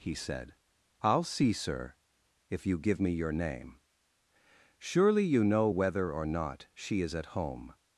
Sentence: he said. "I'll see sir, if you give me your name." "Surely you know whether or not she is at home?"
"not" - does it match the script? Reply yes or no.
yes